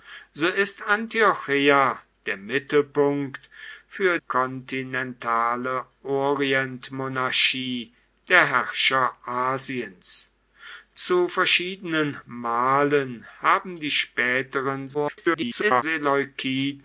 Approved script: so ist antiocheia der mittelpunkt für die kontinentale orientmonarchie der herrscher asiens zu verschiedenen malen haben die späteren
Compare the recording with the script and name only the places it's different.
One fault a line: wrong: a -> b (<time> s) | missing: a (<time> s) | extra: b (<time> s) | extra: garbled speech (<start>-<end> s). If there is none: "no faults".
missing: die (4.2 s)
extra: garbled speech (14.9-15.8 s)